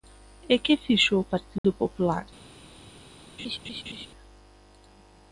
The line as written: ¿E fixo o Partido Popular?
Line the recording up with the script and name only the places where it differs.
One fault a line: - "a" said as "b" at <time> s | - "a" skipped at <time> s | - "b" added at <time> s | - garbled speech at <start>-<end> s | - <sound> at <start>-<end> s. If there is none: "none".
- "que" added at 0.6 s
- dropout at 1.6-1.6 s
- laugh at 3.4-4.1 s